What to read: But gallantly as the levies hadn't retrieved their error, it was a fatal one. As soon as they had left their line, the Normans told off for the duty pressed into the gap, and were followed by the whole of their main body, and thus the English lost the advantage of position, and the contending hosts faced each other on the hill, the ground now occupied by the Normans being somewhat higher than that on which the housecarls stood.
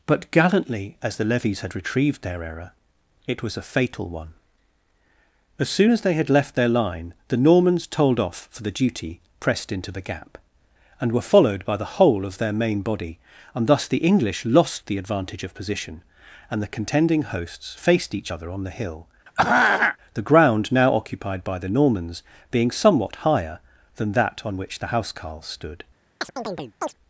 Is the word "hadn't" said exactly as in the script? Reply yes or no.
no